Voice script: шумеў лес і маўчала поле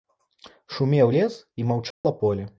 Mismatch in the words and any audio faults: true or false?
true